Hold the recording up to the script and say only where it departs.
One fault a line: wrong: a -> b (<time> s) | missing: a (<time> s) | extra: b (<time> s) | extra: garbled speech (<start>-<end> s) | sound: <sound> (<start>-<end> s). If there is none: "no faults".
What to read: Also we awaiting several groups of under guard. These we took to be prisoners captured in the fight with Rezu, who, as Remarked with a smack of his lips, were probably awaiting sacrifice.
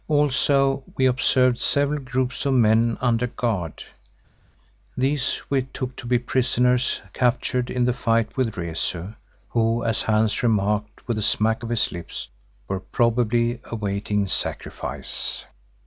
wrong: awaiting -> observed (1.1 s)
extra: men (2.5 s)
extra: Hans (10.0 s)